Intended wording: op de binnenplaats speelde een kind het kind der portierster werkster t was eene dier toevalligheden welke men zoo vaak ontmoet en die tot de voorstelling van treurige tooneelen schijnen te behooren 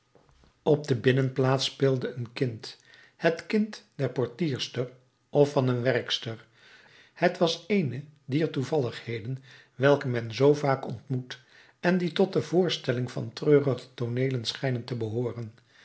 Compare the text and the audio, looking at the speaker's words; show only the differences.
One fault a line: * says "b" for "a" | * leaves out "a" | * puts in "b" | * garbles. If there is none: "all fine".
* puts in "of van een"